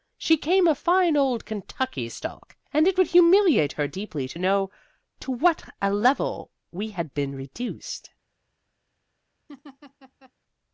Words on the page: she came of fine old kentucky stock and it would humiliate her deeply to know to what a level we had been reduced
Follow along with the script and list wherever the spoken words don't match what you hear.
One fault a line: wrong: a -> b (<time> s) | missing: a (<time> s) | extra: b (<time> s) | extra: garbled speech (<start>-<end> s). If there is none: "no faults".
no faults